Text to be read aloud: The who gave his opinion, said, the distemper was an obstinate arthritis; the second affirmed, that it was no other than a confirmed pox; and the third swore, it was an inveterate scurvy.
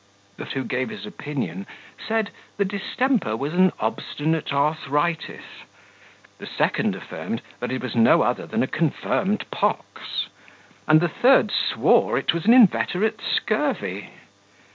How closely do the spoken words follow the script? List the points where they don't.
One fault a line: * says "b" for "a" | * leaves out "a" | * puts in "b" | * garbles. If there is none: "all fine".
all fine